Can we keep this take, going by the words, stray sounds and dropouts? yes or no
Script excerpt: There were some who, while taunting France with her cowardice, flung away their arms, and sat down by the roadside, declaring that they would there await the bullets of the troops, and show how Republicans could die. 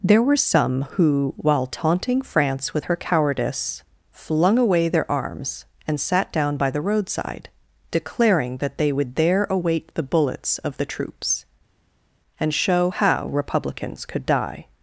yes